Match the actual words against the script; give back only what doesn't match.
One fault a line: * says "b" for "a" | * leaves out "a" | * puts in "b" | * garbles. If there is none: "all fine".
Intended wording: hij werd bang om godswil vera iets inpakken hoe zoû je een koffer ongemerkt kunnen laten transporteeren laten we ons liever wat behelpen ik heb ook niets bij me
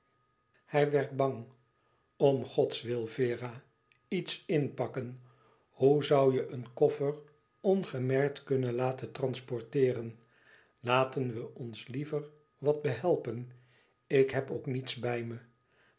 all fine